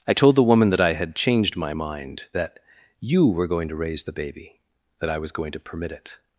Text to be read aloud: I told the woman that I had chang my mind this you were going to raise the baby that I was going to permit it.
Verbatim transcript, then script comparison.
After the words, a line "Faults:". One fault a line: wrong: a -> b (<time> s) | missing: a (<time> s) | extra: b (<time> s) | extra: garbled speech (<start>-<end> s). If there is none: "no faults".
I told the woman that I had changed my mind that you were going to raise the baby that I was going to permit it.
Faults:
wrong: chang -> changed (1.1 s)
wrong: this -> that (2.3 s)